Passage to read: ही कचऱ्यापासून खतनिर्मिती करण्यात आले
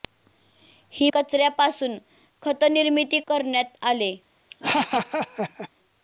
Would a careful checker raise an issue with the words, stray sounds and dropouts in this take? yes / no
yes